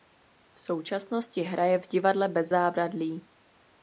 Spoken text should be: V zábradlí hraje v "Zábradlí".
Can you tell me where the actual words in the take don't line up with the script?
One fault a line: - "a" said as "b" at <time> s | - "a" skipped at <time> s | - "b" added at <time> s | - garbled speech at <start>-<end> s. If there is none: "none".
- "zábradlí" said as "současnosti" at 0.6 s
- "Divadle Bez" added at 1.9 s